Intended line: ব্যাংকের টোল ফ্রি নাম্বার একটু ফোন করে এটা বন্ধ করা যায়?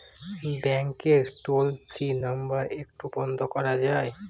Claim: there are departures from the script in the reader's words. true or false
true